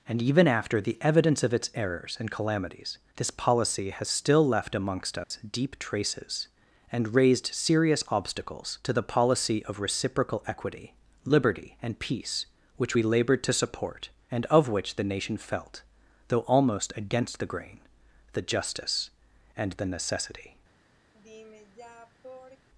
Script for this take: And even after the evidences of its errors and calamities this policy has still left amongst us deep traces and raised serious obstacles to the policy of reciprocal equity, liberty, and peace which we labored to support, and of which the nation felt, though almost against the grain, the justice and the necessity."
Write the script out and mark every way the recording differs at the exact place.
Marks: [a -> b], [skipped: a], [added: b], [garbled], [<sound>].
And even after the [evidences -> evidence] of its errors and calamities this policy has still left amongst us [dropout] deep traces and raised serious obstacles to the policy of reciprocal equity, liberty, and peace which we labored to support, and of which the nation felt, though almost against the grain, the justice and the necessity." [sigh]